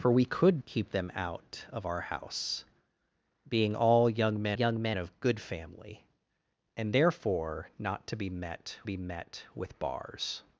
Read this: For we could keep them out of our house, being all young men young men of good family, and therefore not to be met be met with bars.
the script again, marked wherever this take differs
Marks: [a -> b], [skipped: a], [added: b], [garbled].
For we could keep them out of our house, being all young men young men of good family, and therefore not to be met be met with bars.